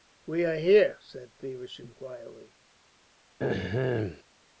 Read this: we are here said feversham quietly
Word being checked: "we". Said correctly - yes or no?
yes